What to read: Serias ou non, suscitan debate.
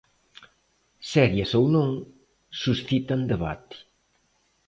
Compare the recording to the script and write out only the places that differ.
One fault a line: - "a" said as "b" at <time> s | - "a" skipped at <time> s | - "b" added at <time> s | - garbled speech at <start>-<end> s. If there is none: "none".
none